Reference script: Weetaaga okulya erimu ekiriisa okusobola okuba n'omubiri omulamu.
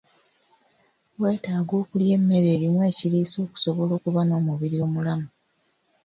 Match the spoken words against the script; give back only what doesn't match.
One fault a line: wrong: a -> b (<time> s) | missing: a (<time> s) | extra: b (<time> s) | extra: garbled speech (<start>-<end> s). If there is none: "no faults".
extra: emmere (2.2 s)